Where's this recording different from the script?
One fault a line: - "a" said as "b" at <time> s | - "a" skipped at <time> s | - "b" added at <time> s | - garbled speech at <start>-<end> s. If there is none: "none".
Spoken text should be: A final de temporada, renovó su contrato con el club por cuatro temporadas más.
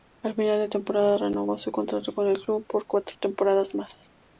none